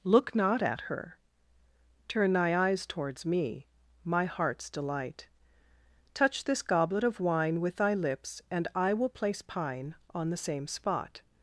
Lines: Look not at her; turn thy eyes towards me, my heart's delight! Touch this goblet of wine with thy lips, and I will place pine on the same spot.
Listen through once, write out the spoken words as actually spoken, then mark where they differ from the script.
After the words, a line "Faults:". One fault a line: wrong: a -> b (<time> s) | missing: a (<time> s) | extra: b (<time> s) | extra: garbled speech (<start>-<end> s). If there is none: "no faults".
Look not at her; turn thy eyes towards me, my heart's delight! Touch this goblet of wine with thy lips, and I will place pine on the same spot.
Faults:
no faults